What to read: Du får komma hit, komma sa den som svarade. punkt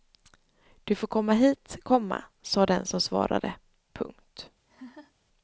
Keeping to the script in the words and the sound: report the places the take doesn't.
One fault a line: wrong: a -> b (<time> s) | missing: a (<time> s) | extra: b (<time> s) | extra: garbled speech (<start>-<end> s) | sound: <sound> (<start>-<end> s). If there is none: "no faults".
sound: laugh (4.7-5.1 s)